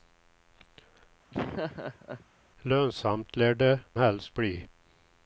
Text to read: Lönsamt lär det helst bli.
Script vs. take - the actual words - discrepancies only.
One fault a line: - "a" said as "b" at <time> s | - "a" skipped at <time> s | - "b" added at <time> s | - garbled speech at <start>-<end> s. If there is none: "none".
none